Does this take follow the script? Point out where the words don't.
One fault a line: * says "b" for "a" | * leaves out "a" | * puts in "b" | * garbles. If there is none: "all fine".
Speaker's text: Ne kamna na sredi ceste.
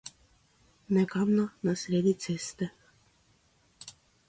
all fine